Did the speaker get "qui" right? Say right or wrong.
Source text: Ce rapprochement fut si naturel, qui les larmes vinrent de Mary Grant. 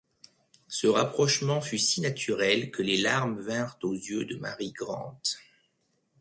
wrong